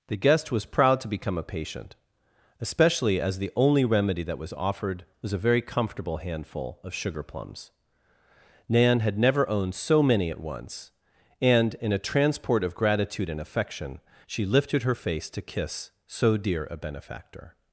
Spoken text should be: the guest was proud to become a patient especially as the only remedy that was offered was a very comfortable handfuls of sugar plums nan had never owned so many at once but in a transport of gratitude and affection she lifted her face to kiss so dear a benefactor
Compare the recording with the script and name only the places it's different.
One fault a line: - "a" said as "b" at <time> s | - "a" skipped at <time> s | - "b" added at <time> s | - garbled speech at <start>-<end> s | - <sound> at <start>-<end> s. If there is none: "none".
- "handfuls" said as "handful" at 6.2 s
- "but" said as "and" at 11.4 s